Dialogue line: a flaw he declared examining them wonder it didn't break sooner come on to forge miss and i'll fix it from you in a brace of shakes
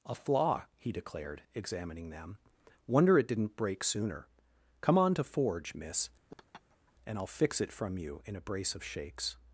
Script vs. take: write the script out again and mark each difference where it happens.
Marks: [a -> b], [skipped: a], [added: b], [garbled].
a flaw he declared examining them wonder it didn't break sooner come on to forge miss and i'll fix it from you in a brace of shakes